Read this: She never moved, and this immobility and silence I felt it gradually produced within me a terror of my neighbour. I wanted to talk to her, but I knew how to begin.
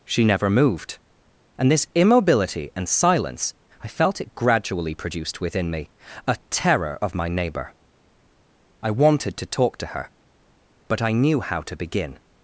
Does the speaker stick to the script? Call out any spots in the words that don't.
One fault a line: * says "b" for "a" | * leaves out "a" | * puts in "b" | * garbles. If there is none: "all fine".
all fine